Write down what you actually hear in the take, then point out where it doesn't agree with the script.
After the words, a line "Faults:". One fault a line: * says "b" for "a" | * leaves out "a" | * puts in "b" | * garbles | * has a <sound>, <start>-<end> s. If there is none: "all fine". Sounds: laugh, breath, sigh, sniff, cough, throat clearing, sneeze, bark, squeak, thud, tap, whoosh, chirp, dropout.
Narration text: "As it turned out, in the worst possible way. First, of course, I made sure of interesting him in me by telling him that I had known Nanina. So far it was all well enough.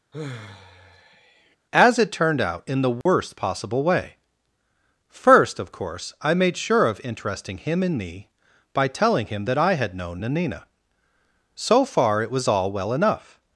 "As it turned out, in the worst possible way. First, of course, I made sure of interesting him in me by telling him that I had known Nanina. So far it was all well enough.
Faults:
* has a sigh, 0.1-1.6 s
* has a dropout, 3.0-3.1 s